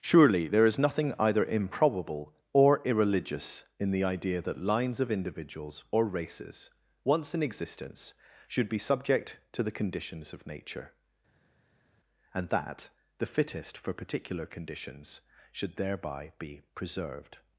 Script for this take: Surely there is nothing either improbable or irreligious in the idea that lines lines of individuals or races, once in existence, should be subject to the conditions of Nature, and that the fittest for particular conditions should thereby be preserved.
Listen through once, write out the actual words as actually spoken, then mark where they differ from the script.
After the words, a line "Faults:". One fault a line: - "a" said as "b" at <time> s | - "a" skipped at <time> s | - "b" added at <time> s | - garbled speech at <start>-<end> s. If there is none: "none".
Surely there is nothing either improbable or irreligious in the idea that lines of individuals or races, once in existence, should be subject to the conditions of Nature, and that the fittest for particular conditions should thereby be preserved.
Faults:
- "lines" skipped at 5.0 s